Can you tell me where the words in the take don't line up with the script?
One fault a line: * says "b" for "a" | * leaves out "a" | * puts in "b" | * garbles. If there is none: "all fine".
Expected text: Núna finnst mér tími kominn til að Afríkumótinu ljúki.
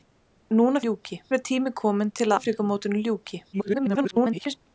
* says "ljúki" for "finnst"
* leaves out "að"
* garbles